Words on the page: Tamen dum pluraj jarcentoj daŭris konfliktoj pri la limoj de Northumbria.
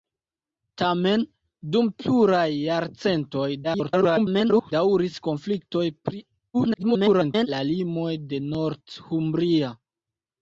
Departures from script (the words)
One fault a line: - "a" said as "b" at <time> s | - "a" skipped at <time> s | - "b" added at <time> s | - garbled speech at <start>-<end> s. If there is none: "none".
- garbled speech at 3.6-4.7 s
- garbled speech at 6.5-7.5 s